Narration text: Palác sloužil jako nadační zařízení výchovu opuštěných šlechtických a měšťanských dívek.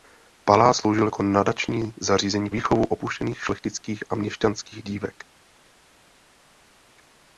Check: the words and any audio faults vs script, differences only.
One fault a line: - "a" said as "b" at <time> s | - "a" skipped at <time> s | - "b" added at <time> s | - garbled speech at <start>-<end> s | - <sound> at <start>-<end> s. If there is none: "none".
none